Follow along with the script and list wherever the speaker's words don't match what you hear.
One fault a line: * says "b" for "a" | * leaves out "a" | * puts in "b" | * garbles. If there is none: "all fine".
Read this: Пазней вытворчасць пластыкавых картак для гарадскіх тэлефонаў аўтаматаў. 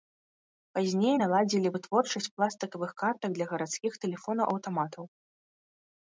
* puts in "наладзілі"